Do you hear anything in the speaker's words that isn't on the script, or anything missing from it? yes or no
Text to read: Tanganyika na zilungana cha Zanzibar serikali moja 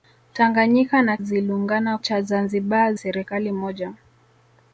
no